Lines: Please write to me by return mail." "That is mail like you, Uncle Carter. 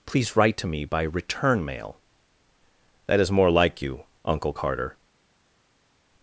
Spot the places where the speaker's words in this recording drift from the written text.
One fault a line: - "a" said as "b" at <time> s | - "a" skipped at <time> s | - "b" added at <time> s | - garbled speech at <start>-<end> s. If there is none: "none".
- "mail" said as "more" at 3.3 s